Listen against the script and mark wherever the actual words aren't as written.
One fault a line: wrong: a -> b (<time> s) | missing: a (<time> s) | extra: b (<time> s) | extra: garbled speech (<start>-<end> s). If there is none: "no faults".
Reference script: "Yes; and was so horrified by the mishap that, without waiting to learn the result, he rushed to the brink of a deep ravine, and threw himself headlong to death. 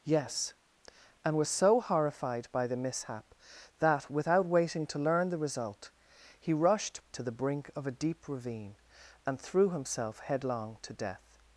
no faults